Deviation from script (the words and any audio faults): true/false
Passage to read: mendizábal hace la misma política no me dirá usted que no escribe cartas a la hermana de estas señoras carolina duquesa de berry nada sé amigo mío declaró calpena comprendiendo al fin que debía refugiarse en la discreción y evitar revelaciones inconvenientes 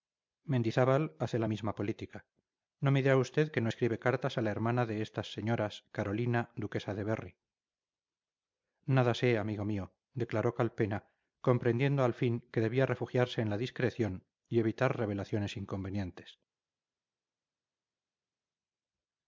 false